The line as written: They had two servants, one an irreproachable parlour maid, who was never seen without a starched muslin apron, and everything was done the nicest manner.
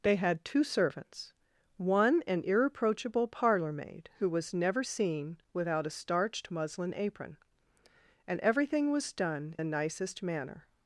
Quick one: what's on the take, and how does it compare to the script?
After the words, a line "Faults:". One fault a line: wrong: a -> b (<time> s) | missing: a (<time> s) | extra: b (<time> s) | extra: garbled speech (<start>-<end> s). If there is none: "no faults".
They had two servants, one an irreproachable parlour maid, who was never seen without a starched muslin apron, and everything was done the nicest manner.
Faults:
no faults